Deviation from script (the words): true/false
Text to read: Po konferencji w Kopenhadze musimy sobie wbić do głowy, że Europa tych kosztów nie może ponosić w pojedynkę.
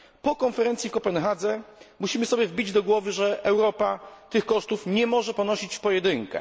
false